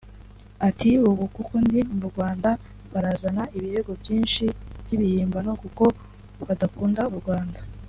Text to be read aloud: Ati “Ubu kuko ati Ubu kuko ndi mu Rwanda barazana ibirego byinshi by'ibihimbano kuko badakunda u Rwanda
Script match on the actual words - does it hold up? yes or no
no